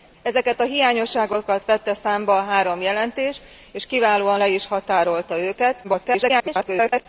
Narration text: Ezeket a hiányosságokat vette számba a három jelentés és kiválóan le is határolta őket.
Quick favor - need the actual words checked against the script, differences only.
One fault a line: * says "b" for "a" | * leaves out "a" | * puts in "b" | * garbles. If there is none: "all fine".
* garbles